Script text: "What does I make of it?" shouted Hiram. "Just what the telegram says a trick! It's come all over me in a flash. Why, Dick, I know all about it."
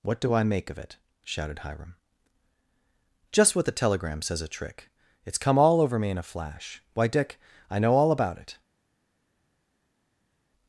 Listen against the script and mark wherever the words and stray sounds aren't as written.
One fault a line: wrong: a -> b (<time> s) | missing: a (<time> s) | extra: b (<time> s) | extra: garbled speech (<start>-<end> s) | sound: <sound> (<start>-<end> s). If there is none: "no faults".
wrong: does -> do (0.2 s)